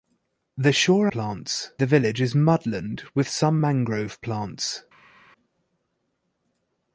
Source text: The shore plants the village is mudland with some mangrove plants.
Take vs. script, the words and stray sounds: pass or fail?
pass